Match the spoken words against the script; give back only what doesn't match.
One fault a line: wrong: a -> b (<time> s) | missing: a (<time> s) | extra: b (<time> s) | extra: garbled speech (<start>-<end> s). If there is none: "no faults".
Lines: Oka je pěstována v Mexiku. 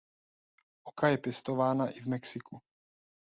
extra: i (1.9 s)